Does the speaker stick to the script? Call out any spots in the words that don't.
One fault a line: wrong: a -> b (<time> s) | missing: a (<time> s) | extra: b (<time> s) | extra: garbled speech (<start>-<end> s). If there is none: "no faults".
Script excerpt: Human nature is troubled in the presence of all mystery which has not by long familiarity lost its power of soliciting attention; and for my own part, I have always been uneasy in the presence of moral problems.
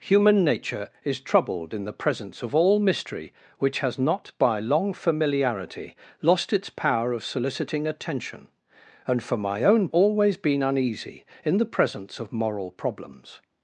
missing: part I have (9.9 s)